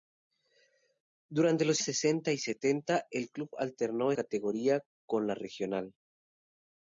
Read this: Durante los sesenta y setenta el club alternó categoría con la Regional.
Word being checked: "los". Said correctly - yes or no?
yes